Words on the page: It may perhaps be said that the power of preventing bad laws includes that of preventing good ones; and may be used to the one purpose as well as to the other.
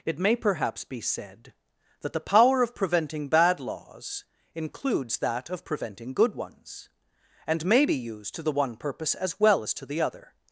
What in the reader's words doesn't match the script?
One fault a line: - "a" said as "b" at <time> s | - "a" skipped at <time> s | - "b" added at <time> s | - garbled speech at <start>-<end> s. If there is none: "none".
none